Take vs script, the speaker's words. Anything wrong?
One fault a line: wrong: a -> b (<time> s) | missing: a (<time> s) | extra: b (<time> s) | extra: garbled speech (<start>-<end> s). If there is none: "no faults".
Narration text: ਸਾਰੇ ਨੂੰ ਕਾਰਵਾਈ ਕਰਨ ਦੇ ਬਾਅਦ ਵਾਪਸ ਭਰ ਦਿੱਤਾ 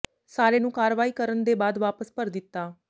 no faults